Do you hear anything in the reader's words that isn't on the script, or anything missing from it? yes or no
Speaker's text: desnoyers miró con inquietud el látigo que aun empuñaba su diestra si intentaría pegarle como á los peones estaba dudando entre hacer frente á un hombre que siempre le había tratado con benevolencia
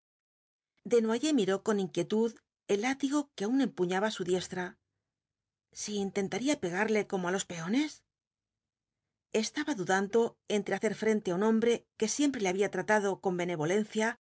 no